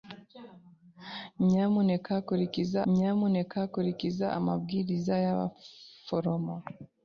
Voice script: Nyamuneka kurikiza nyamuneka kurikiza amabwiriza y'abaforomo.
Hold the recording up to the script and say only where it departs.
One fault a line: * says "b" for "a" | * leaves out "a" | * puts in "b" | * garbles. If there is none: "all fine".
all fine